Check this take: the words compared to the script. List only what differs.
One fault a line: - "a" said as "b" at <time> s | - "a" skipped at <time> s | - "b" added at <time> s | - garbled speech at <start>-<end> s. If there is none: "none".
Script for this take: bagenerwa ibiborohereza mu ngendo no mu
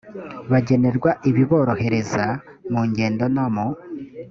none